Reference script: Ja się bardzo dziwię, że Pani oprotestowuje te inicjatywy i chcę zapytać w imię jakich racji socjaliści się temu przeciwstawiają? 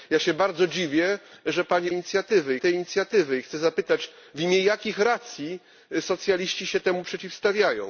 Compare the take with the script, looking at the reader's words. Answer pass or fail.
fail